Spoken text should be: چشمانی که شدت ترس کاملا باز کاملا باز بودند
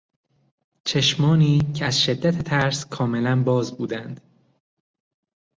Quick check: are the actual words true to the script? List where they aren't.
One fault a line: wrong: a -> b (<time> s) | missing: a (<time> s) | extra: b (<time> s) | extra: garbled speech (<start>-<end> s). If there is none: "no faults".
extra: از (1.8 s)
missing: کاملا باز (3.8 s)